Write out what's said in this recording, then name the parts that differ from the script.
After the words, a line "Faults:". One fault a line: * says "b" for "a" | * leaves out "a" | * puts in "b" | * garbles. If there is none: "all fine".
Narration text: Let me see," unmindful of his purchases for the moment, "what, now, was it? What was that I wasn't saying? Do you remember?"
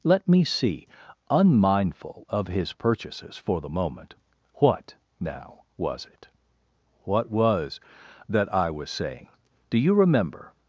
Let me see," unmindful of his purchases for the moment, "what, now, was it? What was that I was saying? Do you remember?"
Faults:
* says "was" for "wasn't"